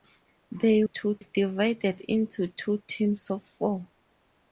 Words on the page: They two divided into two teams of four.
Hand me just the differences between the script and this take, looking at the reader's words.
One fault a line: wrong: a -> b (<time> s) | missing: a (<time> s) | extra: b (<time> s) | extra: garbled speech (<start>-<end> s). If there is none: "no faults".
no faults